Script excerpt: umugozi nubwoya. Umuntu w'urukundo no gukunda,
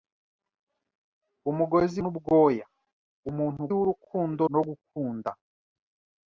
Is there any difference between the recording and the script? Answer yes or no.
no